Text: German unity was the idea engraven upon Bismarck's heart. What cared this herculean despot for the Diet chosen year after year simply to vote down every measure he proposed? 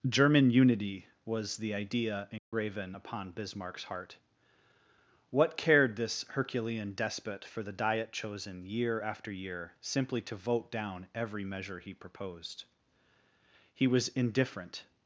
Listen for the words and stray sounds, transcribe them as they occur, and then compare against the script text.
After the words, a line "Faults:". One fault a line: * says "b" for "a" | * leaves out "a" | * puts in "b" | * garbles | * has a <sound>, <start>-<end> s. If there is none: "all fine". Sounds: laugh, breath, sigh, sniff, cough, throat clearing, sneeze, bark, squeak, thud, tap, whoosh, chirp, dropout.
German unity was the idea engraven upon Bismarck's heart. What cared this herculean despot for the Diet chosen year after year simply to vote down every measure he proposed? He was indifferent
Faults:
* has a dropout, 2.4-2.5 s
* puts in "He was indifferent"